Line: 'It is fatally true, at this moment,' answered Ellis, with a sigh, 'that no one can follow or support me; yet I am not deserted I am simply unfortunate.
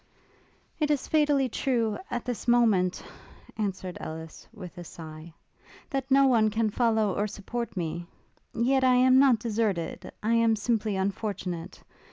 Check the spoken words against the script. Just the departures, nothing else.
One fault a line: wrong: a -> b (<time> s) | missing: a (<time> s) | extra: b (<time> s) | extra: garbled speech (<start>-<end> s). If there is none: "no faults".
no faults